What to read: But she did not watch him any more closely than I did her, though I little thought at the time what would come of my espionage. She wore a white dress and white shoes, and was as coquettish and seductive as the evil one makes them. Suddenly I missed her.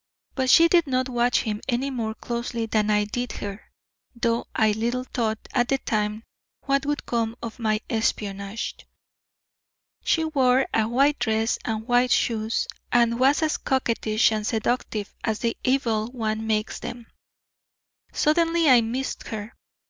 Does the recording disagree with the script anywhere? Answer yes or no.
no